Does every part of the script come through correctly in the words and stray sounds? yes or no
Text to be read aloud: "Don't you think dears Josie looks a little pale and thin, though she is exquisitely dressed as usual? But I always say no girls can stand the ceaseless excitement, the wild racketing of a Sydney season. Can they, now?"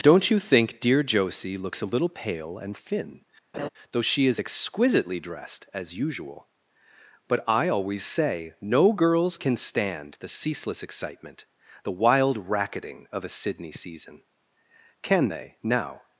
no